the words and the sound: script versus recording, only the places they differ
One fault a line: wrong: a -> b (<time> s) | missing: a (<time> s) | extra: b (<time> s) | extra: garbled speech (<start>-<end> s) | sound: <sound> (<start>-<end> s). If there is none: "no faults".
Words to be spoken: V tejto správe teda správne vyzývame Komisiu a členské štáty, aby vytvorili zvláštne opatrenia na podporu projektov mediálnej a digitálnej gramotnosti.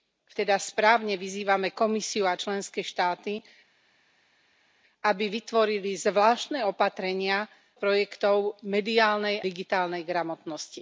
missing: tejto správe (0.3 s)
missing: na podporu (7.4 s)
missing: a (9.4 s)